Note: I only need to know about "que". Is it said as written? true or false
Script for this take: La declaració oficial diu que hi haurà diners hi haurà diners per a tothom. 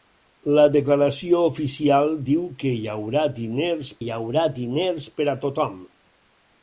true